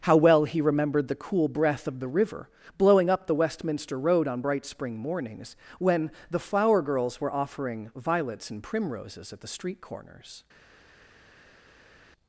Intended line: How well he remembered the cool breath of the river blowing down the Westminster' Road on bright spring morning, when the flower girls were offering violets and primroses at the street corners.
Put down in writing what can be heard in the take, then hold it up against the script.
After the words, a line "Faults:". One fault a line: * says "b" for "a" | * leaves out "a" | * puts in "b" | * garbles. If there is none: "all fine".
How well he remembered the cool breath of the river blowing up the Westminster' Road on bright spring mornings, when the flower girls were offering violets and primroses at the street corners.
Faults:
* says "up" for "down"
* says "mornings" for "morning"